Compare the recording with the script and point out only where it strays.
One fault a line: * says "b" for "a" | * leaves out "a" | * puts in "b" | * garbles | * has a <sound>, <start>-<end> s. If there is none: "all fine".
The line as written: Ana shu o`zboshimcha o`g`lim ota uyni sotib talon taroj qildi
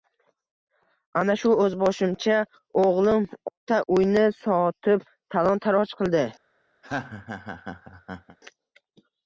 * has a laugh, 6.8-8.4 s